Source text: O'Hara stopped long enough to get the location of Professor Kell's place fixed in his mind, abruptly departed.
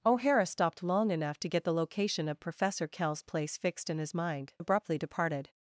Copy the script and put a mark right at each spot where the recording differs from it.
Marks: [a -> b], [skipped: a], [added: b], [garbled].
O'Hara stopped long enough to get the location of Professor Kell's place fixed in his mind, abruptly departed.